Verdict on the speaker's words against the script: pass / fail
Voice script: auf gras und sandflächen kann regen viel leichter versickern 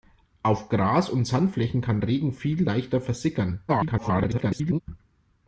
fail